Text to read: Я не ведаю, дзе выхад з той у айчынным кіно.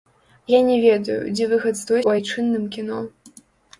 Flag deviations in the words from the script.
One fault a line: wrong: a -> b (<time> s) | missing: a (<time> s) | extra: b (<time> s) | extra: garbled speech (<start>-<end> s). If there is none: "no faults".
no faults